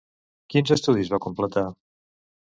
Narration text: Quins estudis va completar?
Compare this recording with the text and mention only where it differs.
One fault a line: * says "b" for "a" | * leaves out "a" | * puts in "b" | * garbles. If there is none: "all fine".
all fine